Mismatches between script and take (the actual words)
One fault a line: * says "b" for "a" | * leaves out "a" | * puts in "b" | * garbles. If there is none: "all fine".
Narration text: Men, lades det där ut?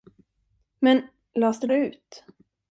* leaves out "där"